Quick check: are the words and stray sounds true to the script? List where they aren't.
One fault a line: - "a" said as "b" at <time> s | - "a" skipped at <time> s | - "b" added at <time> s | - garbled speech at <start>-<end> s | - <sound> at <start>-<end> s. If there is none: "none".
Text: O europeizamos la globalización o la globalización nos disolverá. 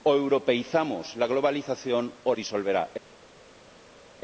- "la globalización nos" skipped at 2.3 s